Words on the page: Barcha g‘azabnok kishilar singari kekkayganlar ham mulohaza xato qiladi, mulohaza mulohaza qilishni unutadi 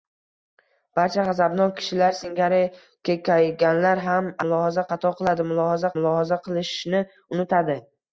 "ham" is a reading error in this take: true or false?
false